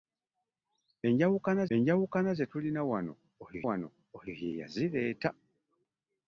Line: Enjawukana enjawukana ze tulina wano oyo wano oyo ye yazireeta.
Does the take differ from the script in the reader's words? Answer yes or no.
no